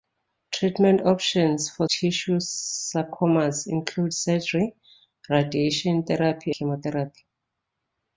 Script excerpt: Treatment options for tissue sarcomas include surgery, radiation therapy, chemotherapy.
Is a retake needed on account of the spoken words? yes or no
no